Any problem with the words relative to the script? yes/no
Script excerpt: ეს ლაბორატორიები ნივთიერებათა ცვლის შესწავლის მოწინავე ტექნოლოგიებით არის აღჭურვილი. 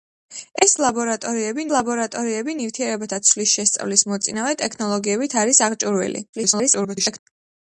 yes